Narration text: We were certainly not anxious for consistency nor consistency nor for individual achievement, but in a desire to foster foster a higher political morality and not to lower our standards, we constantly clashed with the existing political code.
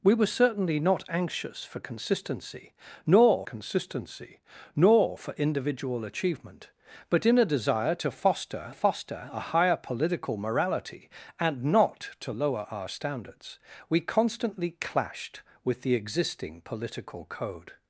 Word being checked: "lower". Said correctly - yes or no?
yes